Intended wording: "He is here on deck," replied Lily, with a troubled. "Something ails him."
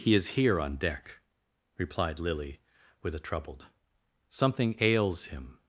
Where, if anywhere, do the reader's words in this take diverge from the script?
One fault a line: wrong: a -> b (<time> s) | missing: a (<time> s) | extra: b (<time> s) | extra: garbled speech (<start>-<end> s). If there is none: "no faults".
no faults